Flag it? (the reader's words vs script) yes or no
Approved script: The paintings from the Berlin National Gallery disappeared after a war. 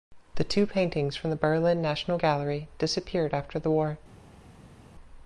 yes